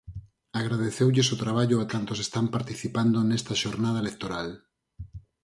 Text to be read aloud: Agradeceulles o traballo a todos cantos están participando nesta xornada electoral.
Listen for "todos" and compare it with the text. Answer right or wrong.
wrong